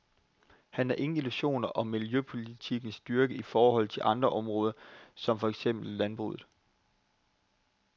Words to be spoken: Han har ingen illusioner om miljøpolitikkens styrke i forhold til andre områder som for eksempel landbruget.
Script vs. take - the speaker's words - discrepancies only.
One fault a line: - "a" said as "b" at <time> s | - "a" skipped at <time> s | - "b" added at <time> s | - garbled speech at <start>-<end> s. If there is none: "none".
none